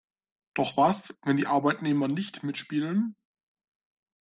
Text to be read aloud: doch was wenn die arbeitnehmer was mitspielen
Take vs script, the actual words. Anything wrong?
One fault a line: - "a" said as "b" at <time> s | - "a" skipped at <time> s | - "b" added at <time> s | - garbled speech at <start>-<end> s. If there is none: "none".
- "was" said as "nicht" at 2.1 s